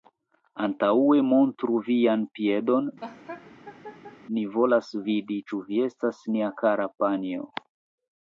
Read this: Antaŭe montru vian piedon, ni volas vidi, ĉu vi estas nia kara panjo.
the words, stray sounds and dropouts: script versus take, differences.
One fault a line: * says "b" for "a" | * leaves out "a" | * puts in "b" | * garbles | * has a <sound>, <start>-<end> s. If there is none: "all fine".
* has a laugh, 3.0-4.2 s